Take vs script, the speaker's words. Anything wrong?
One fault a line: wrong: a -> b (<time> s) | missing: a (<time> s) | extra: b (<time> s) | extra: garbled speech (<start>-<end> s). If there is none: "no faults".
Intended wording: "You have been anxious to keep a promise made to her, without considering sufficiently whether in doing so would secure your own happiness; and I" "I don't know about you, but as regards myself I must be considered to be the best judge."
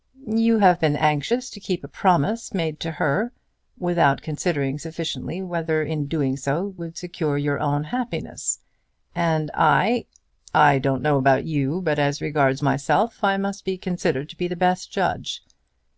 no faults